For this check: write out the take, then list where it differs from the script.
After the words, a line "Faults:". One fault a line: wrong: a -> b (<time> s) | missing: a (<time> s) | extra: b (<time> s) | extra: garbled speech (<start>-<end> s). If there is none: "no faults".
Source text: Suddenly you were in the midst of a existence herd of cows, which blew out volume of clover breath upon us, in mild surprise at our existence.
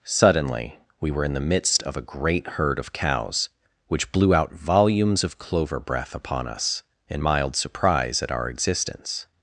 Suddenly we were in the midst of a great herd of cows, which blew out volumes of clover breath upon us, in mild surprise at our existence.
Faults:
wrong: you -> we (1.0 s)
wrong: existence -> great (2.0 s)
wrong: volume -> volumes (4.5 s)